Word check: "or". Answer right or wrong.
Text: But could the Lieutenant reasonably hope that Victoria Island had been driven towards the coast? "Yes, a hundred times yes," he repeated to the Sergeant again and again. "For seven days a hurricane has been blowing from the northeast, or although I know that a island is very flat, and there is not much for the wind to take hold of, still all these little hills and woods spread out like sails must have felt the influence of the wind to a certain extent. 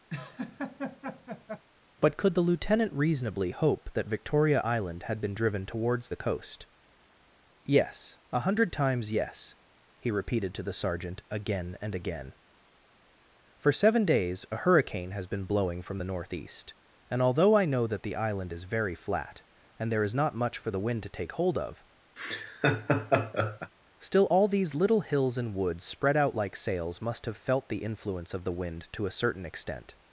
wrong